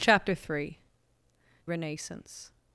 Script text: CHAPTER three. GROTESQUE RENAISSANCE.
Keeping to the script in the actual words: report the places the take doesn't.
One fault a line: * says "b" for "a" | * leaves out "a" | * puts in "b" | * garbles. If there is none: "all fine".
* leaves out "GROTESQUE"